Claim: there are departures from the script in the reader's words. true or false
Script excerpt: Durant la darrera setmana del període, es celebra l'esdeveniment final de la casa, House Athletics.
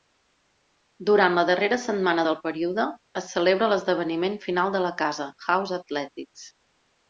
false